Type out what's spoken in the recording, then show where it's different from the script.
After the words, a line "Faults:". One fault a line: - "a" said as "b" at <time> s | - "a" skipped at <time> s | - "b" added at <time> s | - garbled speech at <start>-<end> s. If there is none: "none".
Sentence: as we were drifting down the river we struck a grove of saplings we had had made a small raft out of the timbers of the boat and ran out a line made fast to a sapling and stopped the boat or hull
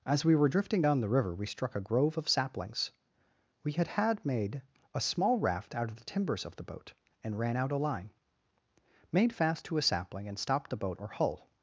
as we were drifting down the river we struck a grove of saplings we had had made a small raft out of the timbers of the boat and ran out a line made fast to a sapling and stopped the boat or hull
Faults:
none